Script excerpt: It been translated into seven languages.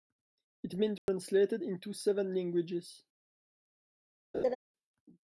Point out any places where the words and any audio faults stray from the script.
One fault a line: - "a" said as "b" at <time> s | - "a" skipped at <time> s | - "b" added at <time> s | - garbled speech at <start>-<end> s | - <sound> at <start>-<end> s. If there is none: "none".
- dropout at 1.0-1.1 s
- laugh at 4.3-4.6 s